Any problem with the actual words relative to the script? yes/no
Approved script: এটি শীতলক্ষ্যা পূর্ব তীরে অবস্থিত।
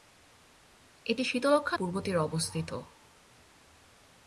no